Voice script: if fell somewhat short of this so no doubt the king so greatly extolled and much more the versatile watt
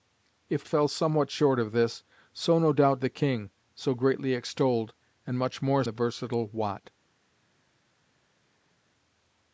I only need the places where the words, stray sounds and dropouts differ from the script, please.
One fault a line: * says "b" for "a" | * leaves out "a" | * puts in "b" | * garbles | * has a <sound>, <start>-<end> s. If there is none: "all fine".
all fine